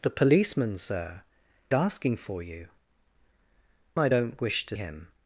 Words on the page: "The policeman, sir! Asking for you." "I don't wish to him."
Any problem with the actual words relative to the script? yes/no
no